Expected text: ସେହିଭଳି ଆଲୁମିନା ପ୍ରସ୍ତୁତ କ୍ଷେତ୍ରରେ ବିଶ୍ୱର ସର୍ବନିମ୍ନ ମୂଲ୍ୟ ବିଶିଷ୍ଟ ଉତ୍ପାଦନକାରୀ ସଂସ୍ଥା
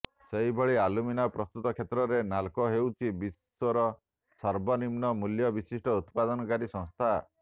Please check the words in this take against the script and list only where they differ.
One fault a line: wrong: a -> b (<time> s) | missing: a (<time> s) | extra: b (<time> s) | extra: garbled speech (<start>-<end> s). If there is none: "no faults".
extra: ନାଲ୍କୋ ହେଉଛି (2.3 s)